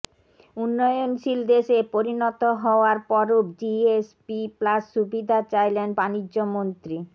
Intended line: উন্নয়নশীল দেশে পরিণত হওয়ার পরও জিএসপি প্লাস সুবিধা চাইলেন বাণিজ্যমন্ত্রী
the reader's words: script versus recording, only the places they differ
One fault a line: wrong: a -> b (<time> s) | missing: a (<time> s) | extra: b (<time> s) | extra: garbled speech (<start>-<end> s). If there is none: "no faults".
no faults